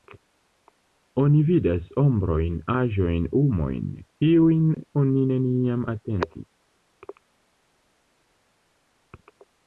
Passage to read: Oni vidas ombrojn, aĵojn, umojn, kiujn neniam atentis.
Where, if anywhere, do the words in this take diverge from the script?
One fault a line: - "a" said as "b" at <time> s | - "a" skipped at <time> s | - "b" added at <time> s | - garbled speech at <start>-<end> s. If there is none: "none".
- "oni" added at 5.0 s